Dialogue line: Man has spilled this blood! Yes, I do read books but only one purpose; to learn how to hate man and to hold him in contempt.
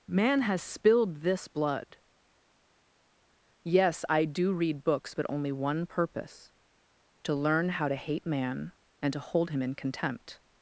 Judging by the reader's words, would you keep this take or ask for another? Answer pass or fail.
pass